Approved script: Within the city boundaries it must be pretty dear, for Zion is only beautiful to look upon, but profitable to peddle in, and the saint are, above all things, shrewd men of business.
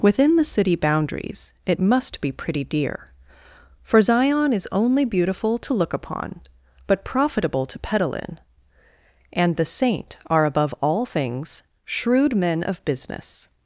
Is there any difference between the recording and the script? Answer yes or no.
no